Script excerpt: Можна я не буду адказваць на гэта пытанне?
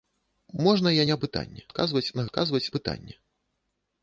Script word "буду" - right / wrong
wrong